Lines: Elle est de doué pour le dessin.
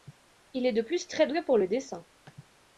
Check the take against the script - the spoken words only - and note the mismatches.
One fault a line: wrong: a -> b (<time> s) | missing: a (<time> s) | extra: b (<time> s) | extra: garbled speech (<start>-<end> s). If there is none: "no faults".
wrong: Elle -> Il (0.5 s)
extra: plus très (0.8 s)